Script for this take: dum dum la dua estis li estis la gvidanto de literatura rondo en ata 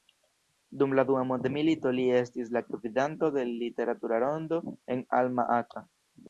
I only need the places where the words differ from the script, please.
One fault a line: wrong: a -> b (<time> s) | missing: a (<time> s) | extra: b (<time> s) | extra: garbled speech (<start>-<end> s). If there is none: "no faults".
missing: dum (0.9 s)
wrong: estis -> mondmilito (1.3 s)
extra: alma (5.2 s)